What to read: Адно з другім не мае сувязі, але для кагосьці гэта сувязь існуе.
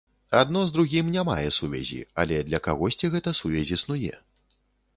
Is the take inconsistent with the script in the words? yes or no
no